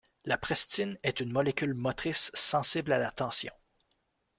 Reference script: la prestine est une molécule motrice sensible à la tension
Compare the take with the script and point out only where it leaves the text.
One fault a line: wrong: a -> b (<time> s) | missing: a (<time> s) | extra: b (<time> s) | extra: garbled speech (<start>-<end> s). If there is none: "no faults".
no faults